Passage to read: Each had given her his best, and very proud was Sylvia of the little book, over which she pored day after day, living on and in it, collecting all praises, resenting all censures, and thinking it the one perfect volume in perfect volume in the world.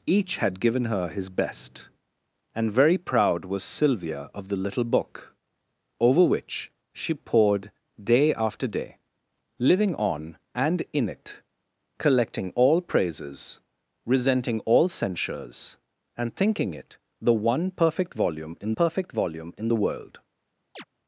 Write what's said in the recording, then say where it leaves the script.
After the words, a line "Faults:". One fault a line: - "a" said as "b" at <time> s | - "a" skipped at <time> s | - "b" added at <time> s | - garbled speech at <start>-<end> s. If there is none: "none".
Each had given her his best, and very proud was Sylvia of the little book, over which she pored day after day, living on and in it, collecting all praises, resenting all censures, and thinking it the one perfect volume in perfect volume in the world.
Faults:
none